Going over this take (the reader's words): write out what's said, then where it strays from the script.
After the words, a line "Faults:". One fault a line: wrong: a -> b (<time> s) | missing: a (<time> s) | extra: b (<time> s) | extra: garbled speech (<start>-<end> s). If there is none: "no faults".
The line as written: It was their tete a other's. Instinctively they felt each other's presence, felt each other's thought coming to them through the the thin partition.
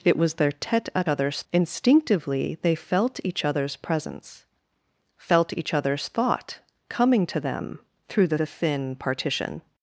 It was their tete a other's. Instinctively they felt each other's presence, felt each other's thought coming to them through the the thin partition.
Faults:
no faults